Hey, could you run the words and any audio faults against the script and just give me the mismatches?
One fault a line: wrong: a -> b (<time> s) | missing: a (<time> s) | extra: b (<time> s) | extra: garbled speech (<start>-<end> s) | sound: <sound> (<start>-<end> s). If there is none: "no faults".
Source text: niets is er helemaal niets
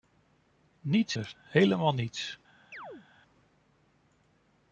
missing: is (1.2 s)
sound: chirp (2.7-3.1 s)